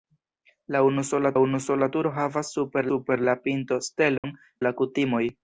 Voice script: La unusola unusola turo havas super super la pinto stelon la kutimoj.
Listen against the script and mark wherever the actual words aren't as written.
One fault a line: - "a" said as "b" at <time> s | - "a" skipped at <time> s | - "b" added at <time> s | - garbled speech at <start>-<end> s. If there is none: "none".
none